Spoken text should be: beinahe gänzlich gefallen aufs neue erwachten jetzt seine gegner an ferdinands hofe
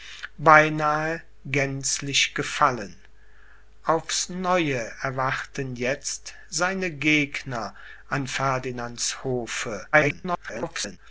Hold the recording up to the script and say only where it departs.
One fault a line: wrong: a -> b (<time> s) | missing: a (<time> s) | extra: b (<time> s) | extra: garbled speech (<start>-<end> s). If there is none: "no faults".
extra: garbled speech (9.9-11.0 s)